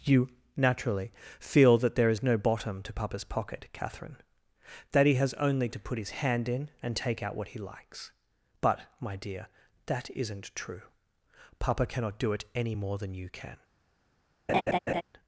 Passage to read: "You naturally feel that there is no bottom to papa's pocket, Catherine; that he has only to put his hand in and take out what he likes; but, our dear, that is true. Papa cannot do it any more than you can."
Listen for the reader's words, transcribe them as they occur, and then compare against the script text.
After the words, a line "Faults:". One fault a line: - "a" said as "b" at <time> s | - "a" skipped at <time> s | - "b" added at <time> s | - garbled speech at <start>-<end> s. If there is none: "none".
"You naturally feel that there is no bottom to papa's pocket, Catherine; that he has only to put his hand in and take out what he likes; but, my dear, that isn't true. Papa cannot do it any more than you can."
Faults:
- "our" said as "my" at 9.0 s
- "is" said as "isn't" at 10.1 s